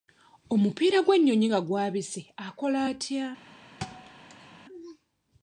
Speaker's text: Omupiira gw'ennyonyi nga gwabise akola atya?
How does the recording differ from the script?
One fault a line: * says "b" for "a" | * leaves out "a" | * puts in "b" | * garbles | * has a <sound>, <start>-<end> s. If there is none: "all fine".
* has a thud, 3.8-4.6 s